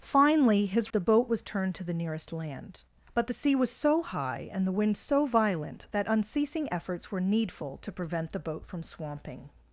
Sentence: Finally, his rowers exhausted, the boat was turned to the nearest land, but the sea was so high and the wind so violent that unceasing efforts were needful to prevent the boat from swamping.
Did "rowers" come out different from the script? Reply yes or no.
yes